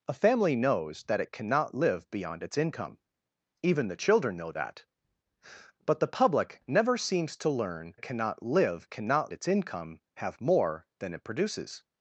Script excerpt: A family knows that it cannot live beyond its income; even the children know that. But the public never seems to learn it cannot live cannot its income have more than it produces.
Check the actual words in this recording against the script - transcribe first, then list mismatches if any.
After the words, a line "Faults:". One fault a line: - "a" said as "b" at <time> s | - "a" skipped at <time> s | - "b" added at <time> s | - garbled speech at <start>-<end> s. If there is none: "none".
A family knows that it cannot live beyond its income; even the children know that. But the public never seems to learn it cannot live cannot its income have more than it produces.
Faults:
none